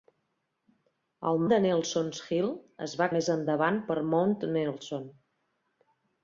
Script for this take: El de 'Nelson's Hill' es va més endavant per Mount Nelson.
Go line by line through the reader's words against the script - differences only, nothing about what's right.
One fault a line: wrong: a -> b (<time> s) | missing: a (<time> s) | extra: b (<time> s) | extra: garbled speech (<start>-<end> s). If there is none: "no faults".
no faults